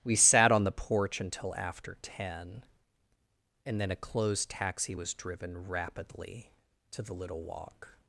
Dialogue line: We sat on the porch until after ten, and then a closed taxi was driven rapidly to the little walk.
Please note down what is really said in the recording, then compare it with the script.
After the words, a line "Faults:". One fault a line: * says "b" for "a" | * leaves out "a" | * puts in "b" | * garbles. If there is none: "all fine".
We sat on the porch until after ten, and then a closed taxi was driven rapidly to the little walk.
Faults:
all fine